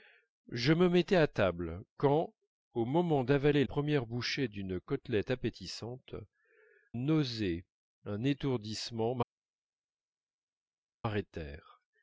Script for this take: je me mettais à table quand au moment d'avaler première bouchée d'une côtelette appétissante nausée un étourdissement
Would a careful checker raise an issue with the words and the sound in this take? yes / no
no